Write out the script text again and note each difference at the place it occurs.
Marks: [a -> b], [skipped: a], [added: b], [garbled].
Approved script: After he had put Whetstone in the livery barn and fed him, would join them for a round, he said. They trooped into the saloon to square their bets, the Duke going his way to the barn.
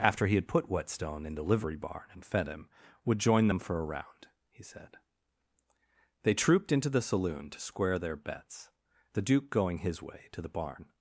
After he had put Whetstone in the livery barn and fed him, would join them for a round, he said. They trooped into the saloon to square their bets, the Duke going his way to the barn.